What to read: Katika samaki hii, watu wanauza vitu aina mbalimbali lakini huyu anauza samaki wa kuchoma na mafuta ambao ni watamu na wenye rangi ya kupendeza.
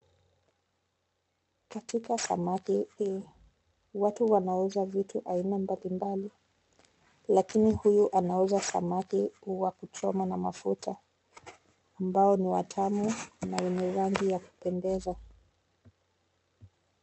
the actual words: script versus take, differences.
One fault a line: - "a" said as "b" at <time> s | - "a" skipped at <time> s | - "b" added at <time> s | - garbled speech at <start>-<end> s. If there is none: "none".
none